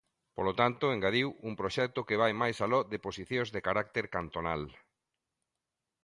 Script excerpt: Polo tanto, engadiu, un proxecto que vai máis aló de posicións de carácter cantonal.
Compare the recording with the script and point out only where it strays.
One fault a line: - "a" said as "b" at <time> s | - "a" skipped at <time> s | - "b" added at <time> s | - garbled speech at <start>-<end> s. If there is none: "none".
none